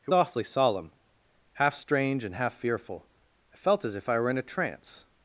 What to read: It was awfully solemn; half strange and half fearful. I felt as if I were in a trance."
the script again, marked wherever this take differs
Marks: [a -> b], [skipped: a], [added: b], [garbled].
It [skipped: was] awfully solemn; half strange and half fearful. I felt as if I were in a trance."